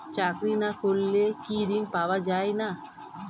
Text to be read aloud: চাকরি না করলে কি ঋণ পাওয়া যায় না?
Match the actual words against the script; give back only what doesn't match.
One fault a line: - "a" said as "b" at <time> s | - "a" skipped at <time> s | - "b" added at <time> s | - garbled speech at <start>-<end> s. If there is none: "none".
none